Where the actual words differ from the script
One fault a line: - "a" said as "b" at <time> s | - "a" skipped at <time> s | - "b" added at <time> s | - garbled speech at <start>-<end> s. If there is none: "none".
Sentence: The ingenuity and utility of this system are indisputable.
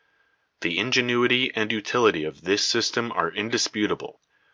none